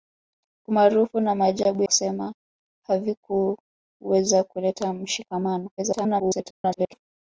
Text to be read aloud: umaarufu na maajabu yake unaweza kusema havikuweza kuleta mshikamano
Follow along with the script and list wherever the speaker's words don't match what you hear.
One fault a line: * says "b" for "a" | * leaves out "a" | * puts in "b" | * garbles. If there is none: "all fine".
* leaves out "yake unaweza"
* garbles